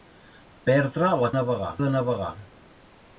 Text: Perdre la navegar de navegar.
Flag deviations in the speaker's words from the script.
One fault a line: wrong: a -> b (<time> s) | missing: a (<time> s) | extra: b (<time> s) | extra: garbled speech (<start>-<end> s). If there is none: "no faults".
no faults